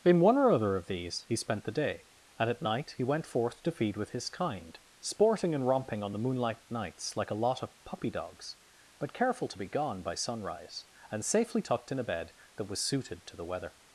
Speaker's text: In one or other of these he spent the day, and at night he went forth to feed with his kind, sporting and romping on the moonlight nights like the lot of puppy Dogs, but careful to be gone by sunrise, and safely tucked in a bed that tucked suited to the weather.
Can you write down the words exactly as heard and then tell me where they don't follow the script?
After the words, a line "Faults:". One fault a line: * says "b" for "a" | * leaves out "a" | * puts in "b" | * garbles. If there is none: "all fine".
In one or other of these he spent the day, and at night he went forth to feed with his kind, sporting and romping on the moonlight nights like a lot of puppy Dogs, but careful to be gone by sunrise, and safely tucked in a bed that was suited to the weather.
Faults:
* says "a" for "the"
* says "was" for "tucked"